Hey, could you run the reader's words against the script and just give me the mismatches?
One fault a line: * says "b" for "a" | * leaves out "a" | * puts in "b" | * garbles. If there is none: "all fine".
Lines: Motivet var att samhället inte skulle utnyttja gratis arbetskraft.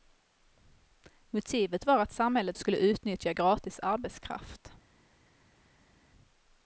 * leaves out "inte"